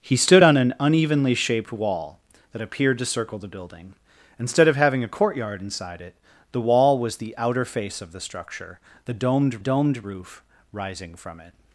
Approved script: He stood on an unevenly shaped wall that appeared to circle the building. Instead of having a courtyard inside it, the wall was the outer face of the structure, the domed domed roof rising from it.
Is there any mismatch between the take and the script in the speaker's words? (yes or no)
no